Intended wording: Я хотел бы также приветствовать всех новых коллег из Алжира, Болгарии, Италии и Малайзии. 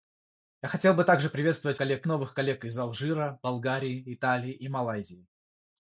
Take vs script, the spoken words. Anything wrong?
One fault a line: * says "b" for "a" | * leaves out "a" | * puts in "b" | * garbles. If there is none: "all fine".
* says "коллег" for "всех"